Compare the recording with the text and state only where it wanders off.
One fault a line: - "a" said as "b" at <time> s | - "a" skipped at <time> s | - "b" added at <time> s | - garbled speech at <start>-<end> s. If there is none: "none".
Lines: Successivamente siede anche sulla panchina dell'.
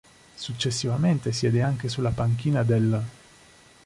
none